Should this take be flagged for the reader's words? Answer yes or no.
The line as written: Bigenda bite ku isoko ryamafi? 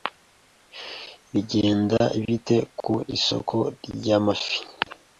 no